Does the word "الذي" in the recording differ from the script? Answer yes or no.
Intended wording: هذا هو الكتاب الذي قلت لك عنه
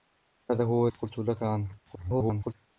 yes